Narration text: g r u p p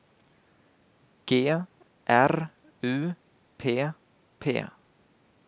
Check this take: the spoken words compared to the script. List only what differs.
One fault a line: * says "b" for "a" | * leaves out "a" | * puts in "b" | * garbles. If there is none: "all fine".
all fine